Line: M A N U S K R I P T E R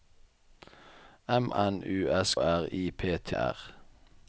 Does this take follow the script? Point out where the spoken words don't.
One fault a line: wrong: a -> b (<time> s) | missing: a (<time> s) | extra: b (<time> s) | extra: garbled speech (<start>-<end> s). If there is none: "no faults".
missing: A (1.5 s)
missing: K (2.3 s)
missing: E (3.4 s)